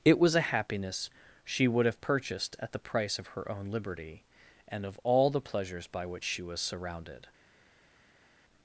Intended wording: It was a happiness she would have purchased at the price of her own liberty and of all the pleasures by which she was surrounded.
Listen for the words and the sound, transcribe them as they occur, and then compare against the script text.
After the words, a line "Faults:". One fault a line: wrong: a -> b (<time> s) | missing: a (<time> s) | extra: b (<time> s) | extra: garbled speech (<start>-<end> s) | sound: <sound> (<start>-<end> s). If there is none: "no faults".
It was a happiness she would have purchased at the price of her own liberty and of all the pleasures by which she was surrounded.
Faults:
no faults